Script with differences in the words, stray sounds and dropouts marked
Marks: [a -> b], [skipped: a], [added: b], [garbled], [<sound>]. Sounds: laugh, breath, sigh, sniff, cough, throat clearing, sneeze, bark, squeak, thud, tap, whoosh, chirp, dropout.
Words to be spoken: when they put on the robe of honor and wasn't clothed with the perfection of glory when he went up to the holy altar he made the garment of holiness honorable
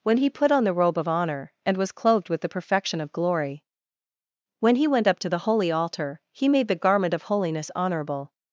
when [they -> he] put on the robe of honor and [wasn't -> was] clothed with the perfection of glory when he went up to the holy altar he made the garment of holiness honorable